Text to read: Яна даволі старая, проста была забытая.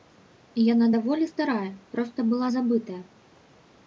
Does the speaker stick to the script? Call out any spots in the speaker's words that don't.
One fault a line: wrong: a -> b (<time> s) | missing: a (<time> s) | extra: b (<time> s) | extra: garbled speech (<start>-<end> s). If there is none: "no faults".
no faults